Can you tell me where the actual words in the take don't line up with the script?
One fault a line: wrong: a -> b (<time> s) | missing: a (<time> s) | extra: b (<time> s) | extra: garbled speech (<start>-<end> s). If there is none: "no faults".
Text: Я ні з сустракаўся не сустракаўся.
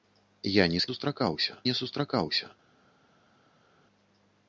no faults